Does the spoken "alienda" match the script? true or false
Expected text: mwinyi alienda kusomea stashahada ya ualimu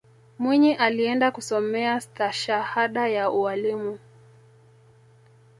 true